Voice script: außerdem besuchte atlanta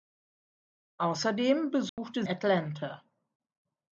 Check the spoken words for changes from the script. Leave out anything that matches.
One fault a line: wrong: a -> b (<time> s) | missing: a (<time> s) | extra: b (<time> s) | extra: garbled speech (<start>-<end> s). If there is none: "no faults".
no faults